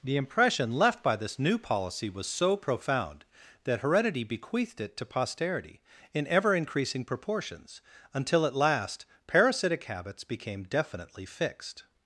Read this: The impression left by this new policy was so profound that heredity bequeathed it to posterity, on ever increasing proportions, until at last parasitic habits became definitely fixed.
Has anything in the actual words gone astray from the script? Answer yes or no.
yes